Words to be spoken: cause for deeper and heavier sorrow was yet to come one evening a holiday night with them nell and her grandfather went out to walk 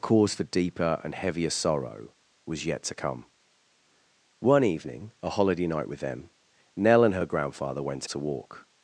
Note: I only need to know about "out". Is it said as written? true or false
false